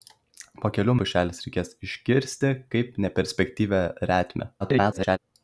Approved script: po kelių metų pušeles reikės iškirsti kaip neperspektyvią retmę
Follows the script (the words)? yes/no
no